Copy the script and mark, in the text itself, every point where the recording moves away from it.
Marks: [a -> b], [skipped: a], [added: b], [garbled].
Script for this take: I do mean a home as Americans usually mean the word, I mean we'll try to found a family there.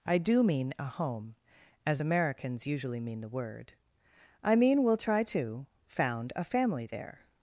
I do mean a home as Americans usually mean the word, I mean we'll try to found a family there.